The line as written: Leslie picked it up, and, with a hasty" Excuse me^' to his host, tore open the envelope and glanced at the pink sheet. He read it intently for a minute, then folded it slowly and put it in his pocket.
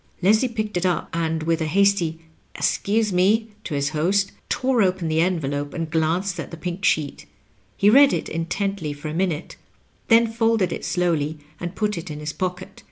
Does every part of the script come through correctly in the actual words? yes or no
yes